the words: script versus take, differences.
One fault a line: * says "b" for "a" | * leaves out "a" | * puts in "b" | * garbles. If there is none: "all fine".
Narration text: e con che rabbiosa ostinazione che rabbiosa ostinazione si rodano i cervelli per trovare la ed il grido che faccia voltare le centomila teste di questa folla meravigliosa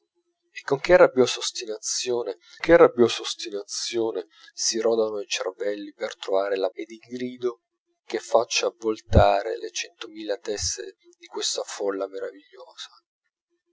all fine